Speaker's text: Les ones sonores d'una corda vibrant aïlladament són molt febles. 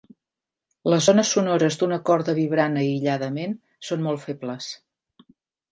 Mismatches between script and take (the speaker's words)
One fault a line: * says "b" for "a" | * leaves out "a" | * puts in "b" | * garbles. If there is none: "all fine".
all fine